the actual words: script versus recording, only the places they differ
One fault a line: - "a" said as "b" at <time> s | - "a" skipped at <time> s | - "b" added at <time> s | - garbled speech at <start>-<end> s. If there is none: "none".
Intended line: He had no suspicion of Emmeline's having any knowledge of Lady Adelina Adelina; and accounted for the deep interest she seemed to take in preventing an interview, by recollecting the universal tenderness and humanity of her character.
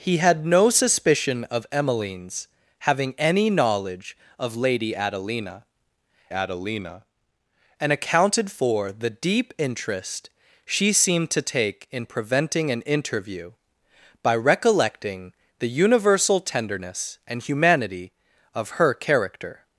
none